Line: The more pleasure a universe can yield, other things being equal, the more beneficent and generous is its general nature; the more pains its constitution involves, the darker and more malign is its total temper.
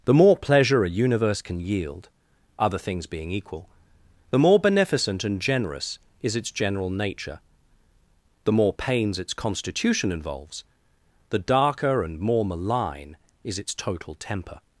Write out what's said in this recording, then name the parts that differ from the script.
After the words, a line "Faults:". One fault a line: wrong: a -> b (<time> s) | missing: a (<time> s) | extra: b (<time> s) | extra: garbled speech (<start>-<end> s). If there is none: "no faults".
The more pleasure a universe can yield, other things being equal, the more beneficent and generous is its general nature; the more pains its constitution involves, the darker and more malign is its total temper.
Faults:
no faults